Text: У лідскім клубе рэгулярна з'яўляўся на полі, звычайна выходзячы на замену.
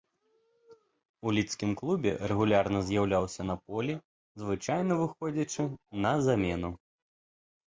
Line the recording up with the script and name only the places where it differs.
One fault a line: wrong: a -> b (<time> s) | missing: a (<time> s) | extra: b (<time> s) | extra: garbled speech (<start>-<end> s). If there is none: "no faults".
no faults